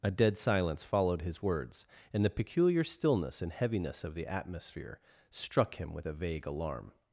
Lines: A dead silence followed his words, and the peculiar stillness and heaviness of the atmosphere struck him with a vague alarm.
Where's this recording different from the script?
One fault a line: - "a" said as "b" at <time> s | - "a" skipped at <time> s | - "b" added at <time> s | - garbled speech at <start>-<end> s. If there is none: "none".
none